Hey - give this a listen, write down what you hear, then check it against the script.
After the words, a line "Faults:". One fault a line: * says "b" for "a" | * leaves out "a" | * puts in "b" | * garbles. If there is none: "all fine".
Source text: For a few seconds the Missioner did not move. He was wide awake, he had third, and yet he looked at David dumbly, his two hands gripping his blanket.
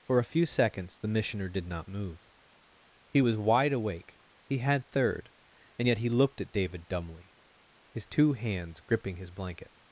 For a few seconds the Missioner did not move. He was wide awake, he had third, and yet he looked at David dumbly, his two hands gripping his blanket.
Faults:
all fine